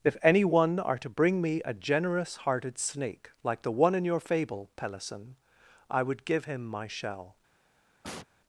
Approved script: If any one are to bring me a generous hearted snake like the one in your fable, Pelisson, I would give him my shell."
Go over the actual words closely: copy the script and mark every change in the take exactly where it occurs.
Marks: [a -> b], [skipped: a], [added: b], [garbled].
If any one are to bring me a generous hearted snake like the one in your fable, Pelisson, I would give him my shell."